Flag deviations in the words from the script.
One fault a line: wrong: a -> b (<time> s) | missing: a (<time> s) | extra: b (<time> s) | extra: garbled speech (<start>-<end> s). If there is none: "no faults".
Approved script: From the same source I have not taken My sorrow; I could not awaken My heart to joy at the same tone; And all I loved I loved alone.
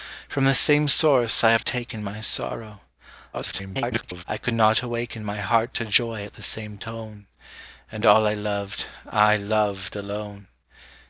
missing: not (1.6 s)
extra: garbled speech (3.3-4.2 s)